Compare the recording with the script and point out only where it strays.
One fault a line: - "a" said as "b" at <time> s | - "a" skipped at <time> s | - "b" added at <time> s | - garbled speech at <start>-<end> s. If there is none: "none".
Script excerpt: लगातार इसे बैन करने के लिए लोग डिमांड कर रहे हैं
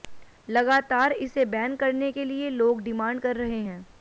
none